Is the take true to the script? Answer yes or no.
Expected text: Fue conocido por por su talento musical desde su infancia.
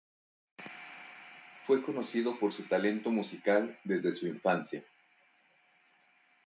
no